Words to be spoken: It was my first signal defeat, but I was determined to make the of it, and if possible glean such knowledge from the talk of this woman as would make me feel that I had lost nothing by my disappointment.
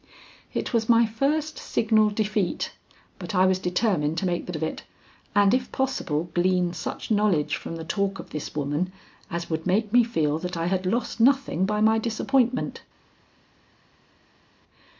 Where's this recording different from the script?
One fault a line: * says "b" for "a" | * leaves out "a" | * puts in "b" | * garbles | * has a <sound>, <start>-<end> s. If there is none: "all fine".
all fine